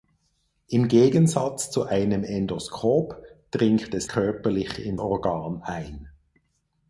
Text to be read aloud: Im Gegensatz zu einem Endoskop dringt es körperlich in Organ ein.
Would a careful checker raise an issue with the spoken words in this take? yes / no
no